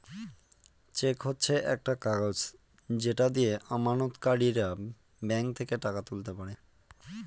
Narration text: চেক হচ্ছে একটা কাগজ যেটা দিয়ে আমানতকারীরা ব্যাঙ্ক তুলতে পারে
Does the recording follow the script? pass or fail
fail